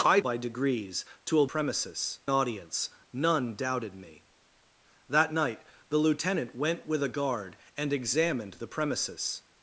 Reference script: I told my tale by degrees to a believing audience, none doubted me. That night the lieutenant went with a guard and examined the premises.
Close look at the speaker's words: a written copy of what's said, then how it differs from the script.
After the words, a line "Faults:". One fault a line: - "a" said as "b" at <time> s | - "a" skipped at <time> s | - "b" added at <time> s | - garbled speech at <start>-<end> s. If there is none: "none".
I by degrees to a premises audience, none doubted me. That night the lieutenant went with a guard and examined the premises.
Faults:
- "told my tale" skipped at 0.2 s
- "believing" said as "premises" at 1.4 s